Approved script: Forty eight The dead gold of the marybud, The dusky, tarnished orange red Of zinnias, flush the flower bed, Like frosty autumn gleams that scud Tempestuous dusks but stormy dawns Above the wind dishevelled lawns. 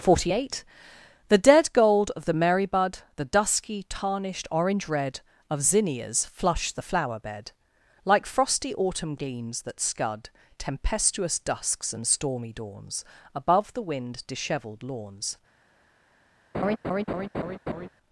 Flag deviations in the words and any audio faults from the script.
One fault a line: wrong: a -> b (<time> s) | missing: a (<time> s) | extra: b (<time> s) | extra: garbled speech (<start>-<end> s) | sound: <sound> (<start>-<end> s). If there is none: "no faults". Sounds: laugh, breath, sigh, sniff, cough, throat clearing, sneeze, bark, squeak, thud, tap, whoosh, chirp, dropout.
wrong: but -> and (11.9 s)
sound: laugh (16.5-17.9 s)